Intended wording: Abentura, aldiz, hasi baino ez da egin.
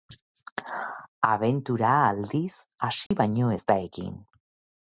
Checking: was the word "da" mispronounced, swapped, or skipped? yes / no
no